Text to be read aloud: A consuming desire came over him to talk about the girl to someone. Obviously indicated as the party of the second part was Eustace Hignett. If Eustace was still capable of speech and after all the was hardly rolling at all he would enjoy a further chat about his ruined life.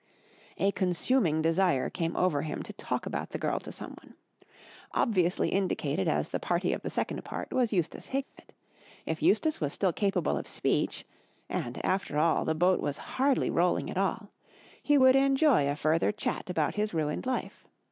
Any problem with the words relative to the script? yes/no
yes